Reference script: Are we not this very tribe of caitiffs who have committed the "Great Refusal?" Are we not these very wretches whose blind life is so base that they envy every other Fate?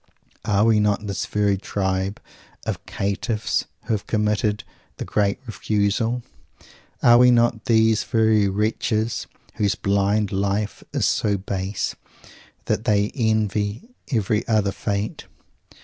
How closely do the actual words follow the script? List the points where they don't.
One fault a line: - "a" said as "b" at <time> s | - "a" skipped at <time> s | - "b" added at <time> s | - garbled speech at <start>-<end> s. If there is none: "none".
none